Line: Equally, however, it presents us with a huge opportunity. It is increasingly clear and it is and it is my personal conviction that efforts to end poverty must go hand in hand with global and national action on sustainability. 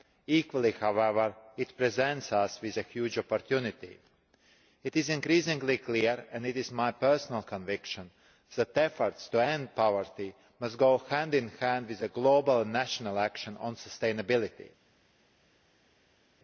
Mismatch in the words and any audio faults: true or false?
true